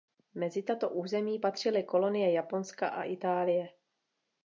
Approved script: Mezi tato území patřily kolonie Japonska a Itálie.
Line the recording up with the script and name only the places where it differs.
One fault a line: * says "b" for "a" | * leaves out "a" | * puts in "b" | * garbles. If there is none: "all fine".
all fine